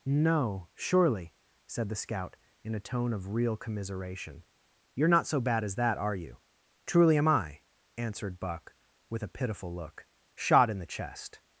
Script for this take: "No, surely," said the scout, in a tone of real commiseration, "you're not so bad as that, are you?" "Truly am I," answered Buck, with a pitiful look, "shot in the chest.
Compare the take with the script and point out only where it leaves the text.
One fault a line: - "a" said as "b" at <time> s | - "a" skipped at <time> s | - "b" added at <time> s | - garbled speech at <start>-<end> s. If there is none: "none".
none